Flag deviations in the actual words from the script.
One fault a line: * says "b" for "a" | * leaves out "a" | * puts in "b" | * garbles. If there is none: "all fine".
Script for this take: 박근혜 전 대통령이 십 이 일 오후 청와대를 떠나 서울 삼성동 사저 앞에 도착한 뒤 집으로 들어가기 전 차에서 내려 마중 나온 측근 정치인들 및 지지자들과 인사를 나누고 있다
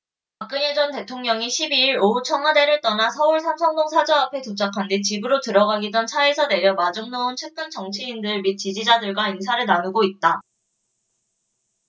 all fine